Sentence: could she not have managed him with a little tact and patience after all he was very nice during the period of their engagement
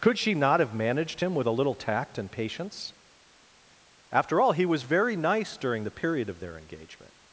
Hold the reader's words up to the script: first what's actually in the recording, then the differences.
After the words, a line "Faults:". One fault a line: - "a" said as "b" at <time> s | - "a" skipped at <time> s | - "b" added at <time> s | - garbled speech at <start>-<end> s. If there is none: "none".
could she not have managed him with a little tact and patience after all he was very nice during the period of their engagement
Faults:
none